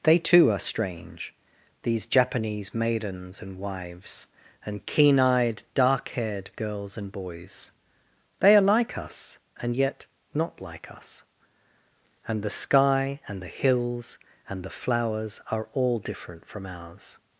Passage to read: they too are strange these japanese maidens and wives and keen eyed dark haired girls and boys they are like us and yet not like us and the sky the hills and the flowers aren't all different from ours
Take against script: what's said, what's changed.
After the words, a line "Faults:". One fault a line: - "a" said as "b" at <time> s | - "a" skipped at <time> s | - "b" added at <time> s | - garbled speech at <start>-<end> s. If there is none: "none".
they too are strange these japanese maidens and wives and keen eyed dark haired girls and boys they are like us and yet not like us and the sky and the hills and the flowers are all different from ours
Faults:
- "and" added at 13.3 s
- "aren't" said as "are" at 15.5 s